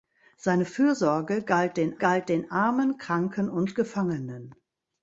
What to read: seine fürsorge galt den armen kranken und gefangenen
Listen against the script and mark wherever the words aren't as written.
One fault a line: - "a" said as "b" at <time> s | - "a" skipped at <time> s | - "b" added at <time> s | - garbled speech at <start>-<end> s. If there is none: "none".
- "galt den" added at 2.0 s